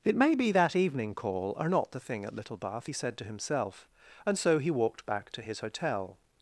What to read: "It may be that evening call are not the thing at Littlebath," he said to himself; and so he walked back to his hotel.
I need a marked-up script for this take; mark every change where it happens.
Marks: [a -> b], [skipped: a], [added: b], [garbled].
"It may be that evening call are not the thing at Littlebath," he said to himself; and so he walked back to his hotel.